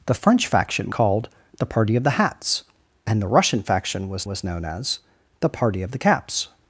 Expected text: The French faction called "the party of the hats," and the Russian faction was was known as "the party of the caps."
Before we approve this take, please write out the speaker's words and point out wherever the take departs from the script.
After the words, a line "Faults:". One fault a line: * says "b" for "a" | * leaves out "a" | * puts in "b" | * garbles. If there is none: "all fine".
The French faction called "the party of the hats," and the Russian faction was was known as "the party of the caps."
Faults:
all fine